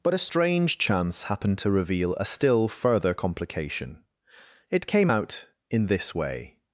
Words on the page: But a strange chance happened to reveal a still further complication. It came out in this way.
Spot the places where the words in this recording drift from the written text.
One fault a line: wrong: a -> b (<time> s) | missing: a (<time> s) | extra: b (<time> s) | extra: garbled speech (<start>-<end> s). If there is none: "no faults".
no faults